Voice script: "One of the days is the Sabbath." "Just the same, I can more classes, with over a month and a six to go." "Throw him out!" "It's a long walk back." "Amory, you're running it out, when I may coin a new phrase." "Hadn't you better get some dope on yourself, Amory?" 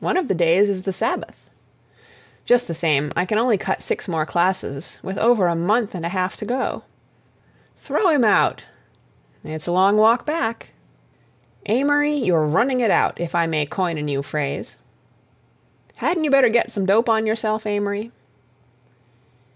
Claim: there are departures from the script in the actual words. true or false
true